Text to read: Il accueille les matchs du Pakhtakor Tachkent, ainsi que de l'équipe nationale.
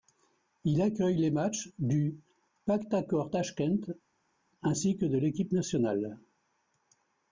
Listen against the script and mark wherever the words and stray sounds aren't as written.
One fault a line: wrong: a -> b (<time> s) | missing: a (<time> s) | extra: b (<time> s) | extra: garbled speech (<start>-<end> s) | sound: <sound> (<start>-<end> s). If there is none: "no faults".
no faults